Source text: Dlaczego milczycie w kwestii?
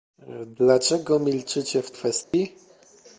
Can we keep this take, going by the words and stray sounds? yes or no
no